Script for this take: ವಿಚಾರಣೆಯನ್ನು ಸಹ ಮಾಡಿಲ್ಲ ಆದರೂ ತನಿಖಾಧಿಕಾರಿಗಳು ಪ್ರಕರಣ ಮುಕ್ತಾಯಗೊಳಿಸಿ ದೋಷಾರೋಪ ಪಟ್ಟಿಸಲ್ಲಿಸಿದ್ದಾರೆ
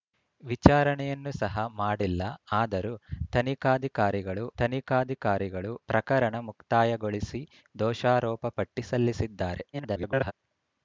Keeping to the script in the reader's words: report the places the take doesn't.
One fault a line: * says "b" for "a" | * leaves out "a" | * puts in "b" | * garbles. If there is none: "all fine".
* puts in "ತನಿಖಾಧಿಕಾರಿಗಳು"
* garbles